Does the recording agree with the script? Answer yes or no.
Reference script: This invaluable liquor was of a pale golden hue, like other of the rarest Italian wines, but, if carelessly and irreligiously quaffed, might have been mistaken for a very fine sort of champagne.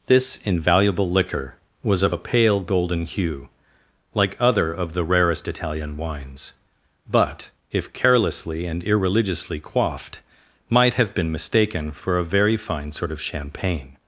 yes